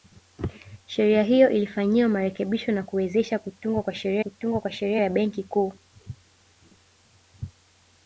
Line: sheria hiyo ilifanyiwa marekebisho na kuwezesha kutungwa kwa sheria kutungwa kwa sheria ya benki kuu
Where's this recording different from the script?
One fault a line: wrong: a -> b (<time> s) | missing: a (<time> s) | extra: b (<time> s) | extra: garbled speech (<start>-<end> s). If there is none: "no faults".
no faults